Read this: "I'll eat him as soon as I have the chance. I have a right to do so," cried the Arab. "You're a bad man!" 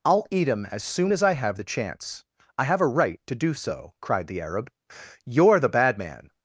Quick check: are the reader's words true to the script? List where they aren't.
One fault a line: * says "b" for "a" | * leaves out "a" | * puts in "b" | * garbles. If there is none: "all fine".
* says "the" for "a"